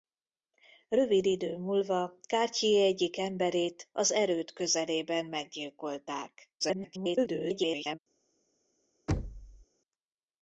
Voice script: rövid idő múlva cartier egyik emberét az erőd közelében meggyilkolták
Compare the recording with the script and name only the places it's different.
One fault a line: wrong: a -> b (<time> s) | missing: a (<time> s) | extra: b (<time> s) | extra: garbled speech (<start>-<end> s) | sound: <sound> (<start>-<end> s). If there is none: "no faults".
extra: garbled speech (6.6-8.0 s)
sound: thud (9.1-9.7 s)